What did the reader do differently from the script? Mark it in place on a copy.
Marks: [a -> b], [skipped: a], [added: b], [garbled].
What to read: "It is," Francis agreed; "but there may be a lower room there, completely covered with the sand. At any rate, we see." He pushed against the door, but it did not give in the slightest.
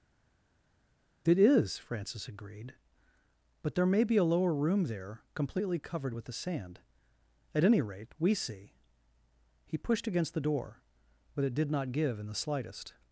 "It is," Francis agreed; "but there may be a lower room there, completely covered with the sand. At any rate, we see." He pushed against the door, but it did not give in the slightest.